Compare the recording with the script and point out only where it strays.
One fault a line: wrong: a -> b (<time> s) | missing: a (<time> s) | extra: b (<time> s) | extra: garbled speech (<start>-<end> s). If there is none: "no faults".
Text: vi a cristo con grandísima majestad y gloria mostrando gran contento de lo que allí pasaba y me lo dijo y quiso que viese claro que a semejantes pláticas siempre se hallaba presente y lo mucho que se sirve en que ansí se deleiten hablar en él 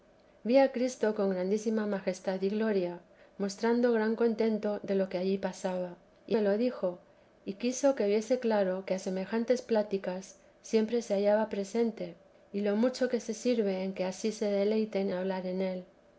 no faults